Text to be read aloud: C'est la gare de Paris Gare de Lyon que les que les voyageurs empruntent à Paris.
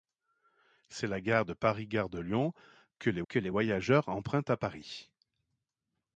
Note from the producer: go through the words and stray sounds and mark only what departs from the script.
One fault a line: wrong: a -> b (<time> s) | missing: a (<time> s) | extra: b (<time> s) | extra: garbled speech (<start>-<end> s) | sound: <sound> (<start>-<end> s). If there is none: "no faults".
no faults